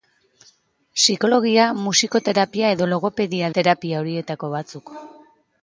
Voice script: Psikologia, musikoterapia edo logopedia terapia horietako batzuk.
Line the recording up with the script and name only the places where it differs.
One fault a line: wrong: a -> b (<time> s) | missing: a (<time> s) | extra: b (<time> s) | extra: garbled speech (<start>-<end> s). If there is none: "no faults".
no faults